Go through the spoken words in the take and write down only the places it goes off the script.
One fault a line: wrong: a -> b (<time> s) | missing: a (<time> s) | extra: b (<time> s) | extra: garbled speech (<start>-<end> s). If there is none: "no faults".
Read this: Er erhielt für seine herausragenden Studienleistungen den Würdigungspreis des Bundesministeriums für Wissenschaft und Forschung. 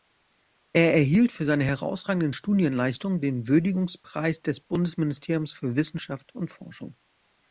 no faults